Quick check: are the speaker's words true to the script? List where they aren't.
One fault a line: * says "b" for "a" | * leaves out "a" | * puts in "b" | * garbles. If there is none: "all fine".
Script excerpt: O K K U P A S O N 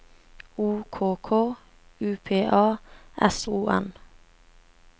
all fine